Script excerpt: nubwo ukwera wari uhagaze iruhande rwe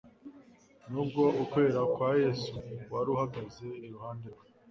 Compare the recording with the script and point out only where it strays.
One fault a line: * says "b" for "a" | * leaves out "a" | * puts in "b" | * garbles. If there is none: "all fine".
* puts in "kwa yesu"